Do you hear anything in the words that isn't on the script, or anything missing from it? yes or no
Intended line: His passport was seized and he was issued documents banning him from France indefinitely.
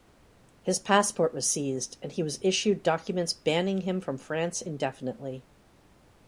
no